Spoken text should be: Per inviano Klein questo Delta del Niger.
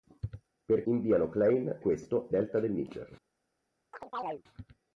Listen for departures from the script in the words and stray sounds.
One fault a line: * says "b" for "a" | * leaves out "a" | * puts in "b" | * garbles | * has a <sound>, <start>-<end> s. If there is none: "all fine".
* has a chirp, 3.9-4.4 s